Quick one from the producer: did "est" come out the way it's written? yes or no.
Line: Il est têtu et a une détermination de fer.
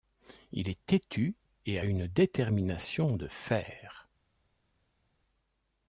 yes